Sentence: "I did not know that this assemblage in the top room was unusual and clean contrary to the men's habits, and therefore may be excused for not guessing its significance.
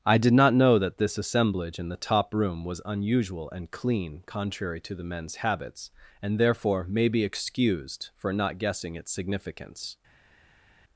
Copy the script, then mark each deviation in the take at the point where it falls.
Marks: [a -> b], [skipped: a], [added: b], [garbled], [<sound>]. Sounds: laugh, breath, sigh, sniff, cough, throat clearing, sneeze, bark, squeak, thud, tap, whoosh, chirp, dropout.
"I did not know that this assemblage in the top room was unusual and clean contrary to the men's habits, and therefore may be excused for not guessing its significance.